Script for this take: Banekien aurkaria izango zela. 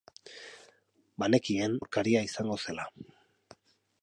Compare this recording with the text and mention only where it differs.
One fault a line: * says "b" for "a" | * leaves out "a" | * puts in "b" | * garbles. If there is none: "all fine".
all fine